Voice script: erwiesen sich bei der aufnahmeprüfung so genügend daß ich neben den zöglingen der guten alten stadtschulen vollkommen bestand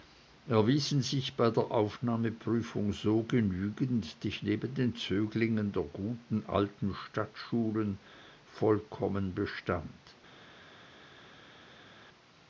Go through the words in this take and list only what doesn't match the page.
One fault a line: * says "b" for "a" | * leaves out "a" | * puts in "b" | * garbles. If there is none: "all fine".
* leaves out "daß"